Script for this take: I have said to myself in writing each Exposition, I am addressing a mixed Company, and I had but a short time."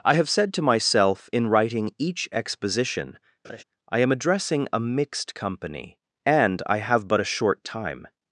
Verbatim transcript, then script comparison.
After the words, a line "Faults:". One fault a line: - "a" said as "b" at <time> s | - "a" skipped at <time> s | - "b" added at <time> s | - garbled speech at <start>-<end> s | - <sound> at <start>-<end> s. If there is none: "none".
I have said to myself in writing each Exposition, I am addressing a mixed Company, and I have but a short time."
Faults:
- laugh at 3.4-3.6 s
- "had" said as "have" at 6.8 s